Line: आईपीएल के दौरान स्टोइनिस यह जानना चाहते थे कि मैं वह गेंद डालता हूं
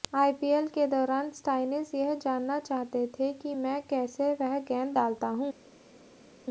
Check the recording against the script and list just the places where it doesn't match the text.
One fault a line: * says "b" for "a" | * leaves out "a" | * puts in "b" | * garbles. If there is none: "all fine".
* puts in "कैसे"